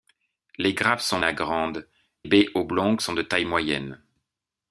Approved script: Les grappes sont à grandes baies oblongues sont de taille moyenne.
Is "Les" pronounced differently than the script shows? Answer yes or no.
no